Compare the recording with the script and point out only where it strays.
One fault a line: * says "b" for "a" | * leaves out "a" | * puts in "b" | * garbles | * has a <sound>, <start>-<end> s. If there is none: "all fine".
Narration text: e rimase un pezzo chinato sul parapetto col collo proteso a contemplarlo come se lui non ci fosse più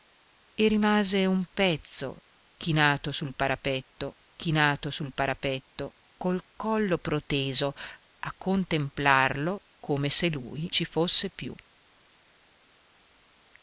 * puts in "chinato sul parapetto"
* leaves out "non"